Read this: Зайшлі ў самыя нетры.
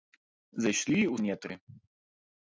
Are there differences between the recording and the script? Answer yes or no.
yes